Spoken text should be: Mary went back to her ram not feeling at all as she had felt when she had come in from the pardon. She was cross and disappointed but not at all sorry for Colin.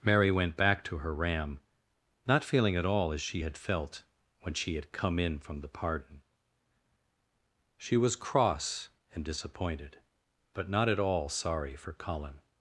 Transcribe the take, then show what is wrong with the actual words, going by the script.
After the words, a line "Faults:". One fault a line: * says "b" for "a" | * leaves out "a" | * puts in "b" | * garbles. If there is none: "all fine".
Mary went back to her ram not feeling at all as she had felt when she had come in from the pardon. She was cross and disappointed but not at all sorry for Colin.
Faults:
all fine